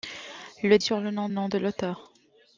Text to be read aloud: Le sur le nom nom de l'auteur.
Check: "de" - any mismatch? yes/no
no